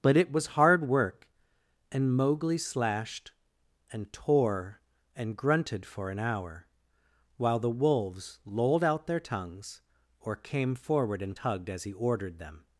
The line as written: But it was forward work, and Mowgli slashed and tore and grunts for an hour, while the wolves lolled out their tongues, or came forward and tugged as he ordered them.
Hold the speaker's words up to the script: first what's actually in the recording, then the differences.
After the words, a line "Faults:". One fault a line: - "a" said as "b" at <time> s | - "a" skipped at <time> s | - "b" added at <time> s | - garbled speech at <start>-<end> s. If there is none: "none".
But it was hard work, and Mowgli slashed and tore and grunted for an hour, while the wolves lolled out their tongues, or came forward and tugged as he ordered them.
Faults:
- "forward" said as "hard" at 0.6 s
- "grunts" said as "grunted" at 5.4 s